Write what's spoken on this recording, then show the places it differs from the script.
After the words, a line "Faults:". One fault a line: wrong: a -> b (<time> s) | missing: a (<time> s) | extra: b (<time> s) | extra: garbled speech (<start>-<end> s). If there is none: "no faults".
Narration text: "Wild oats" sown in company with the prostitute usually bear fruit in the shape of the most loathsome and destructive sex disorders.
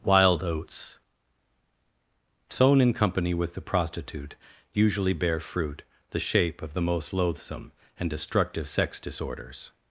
"Wild oats" sown in company with the prostitute usually bear fruit the shape of the most loathsome and destructive sex disorders.
Faults:
missing: in (5.8 s)